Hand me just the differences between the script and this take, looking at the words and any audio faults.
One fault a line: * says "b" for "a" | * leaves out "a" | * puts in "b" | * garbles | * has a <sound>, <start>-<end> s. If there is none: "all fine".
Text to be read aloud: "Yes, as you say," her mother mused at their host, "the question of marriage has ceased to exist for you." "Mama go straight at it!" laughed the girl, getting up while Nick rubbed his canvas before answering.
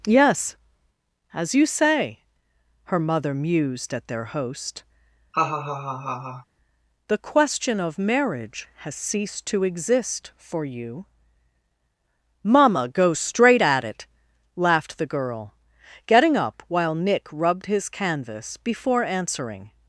* has a laugh, 5.3-6.5 s